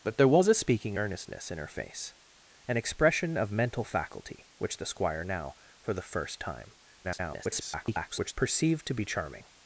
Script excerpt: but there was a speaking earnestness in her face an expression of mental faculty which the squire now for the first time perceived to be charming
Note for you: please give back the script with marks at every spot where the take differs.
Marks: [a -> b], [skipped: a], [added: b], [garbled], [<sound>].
but there was a speaking earnestness in her face an expression of mental faculty which the squire now for the first time [garbled] perceived to be charming